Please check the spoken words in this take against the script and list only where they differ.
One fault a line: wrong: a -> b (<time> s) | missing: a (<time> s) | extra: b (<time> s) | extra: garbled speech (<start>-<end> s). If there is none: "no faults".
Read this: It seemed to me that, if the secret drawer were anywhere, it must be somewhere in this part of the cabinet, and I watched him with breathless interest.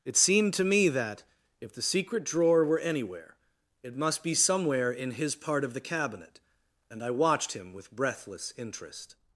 wrong: this -> his (5.1 s)